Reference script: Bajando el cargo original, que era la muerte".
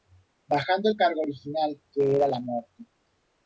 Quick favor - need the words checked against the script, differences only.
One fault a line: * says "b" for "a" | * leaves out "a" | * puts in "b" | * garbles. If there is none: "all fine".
all fine